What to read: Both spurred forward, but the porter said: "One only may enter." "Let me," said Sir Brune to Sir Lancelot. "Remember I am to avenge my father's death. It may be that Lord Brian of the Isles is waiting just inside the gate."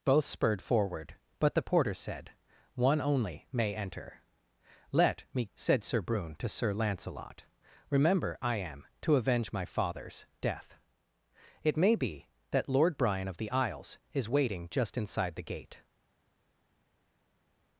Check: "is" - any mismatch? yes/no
no